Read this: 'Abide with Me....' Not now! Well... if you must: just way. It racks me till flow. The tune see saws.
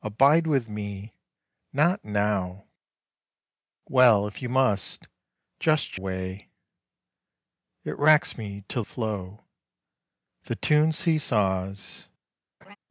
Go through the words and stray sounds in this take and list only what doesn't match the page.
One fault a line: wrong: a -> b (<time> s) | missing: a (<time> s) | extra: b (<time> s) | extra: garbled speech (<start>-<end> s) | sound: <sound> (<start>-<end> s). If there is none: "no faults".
sound: laugh (12.6-12.8 s)